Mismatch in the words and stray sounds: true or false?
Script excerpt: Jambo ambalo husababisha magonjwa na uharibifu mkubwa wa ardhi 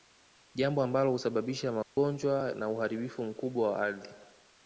true